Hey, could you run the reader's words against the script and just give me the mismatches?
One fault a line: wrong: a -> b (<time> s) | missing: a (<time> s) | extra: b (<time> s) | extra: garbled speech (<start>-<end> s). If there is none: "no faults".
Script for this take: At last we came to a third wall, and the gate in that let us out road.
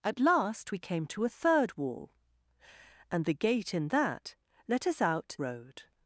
no faults